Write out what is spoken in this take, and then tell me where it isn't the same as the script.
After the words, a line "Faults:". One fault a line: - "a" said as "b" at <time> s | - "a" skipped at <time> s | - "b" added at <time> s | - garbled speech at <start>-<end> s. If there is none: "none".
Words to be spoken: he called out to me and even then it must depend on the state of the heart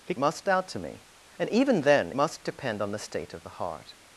he must out to me and even then must depend on the state of the heart
Faults:
- "called" said as "must" at 0.2 s
- "it" skipped at 2.1 s